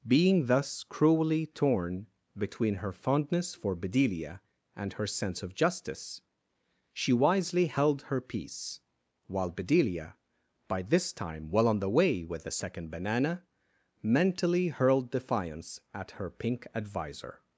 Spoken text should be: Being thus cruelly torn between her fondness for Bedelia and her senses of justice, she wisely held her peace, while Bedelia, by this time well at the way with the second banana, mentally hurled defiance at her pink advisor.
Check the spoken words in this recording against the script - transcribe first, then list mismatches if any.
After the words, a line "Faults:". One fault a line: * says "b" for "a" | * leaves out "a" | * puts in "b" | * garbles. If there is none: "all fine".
Being thus cruelly torn between her fondness for Bedelia and her sense of justice, she wisely held her peace, while Bedelia, by this time well on the way with the second banana, mentally hurled defiance at her pink advisor.
Faults:
* says "sense" for "senses"
* says "on" for "at"